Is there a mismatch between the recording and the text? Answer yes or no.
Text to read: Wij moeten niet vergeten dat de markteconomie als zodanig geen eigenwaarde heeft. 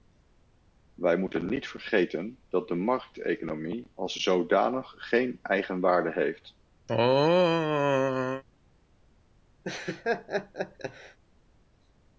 no